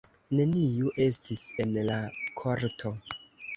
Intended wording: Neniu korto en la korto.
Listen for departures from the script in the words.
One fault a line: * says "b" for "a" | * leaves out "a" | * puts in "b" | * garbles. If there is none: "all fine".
* says "estis" for "korto"